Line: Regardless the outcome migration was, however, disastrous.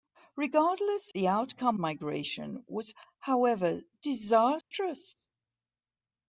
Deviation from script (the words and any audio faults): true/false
true